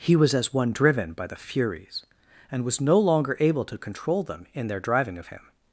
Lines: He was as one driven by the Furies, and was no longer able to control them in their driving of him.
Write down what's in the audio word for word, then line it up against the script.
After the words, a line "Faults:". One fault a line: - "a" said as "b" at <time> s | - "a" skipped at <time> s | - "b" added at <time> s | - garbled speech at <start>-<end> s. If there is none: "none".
He was as one driven by the Furies, and was no longer able to control them in their driving of him.
Faults:
none